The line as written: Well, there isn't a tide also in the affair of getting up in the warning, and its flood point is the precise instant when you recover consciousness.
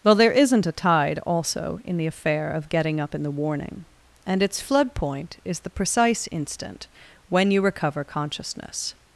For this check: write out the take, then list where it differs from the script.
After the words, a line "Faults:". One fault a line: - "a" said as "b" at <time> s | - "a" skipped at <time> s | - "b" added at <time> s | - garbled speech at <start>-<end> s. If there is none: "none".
Well, there isn't a tide also in the affair of getting up in the warning, and its flood point is the precise instant when you recover consciousness.
Faults:
none